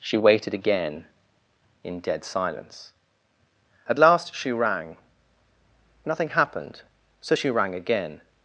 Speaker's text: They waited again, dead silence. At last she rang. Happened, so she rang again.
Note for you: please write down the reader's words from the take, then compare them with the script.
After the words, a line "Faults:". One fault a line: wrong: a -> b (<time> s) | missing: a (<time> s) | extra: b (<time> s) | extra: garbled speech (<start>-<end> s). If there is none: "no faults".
She waited again, in dead silence. At last she rang. Nothing happened, so she rang again.
Faults:
wrong: They -> She (0.0 s)
extra: in (1.8 s)
extra: Nothing (6.0 s)